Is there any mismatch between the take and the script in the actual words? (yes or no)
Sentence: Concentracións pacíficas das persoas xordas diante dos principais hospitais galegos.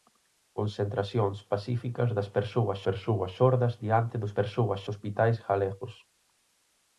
yes